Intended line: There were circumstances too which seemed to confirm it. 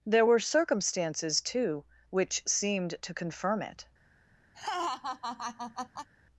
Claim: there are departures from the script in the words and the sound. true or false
true